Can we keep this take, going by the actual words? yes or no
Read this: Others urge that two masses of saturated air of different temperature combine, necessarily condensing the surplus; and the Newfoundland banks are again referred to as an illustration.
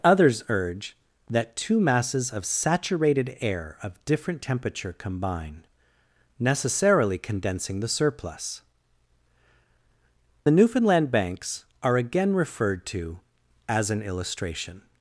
no